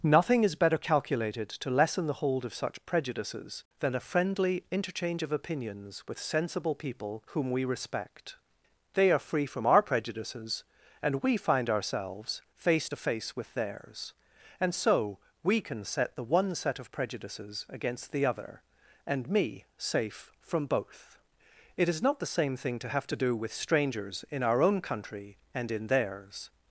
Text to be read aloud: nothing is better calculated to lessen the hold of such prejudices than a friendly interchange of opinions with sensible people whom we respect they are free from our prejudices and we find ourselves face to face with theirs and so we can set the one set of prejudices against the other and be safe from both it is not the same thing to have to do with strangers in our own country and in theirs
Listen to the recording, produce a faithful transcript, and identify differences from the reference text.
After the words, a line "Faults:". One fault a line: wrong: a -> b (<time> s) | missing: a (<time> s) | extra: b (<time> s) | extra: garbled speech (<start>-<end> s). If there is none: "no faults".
nothing is better calculated to lessen the hold of such prejudices than a friendly interchange of opinions with sensible people whom we respect they are free from our prejudices and we find ourselves face to face with theirs and so we can set the one set of prejudices against the other and me safe from both it is not the same thing to have to do with strangers in our own country and in theirs
Faults:
wrong: be -> me (19.3 s)